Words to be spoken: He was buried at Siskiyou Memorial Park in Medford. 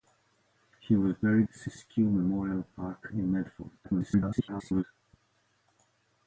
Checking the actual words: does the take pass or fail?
fail